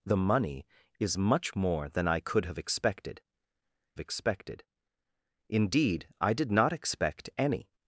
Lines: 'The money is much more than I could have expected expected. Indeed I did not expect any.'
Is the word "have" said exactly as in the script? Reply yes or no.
yes